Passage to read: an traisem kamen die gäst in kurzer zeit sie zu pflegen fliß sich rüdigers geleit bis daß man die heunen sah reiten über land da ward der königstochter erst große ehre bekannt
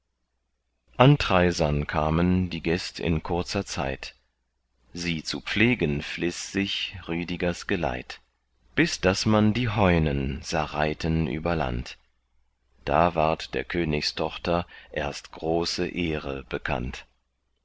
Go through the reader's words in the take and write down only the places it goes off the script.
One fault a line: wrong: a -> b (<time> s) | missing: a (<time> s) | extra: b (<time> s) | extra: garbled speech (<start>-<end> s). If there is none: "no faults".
no faults